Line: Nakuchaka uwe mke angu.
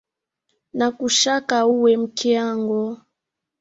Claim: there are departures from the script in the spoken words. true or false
false